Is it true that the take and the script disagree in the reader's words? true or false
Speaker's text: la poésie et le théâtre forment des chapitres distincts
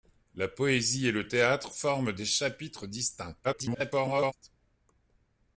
true